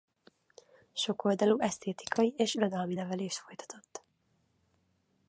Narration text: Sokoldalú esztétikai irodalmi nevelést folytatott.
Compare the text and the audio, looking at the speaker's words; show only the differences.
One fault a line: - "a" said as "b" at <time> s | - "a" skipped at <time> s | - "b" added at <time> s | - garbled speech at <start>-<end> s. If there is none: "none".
- "és" added at 2.4 s